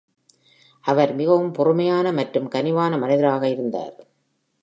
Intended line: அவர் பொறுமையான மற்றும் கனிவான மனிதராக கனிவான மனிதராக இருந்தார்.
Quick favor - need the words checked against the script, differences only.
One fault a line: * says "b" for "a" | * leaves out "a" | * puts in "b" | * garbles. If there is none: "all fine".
* puts in "மிகவும்"
* leaves out "கனிவான மனிதராக"